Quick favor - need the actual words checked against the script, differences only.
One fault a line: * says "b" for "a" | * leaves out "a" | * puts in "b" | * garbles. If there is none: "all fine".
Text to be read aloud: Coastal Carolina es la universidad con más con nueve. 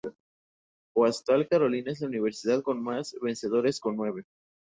* puts in "vencedores"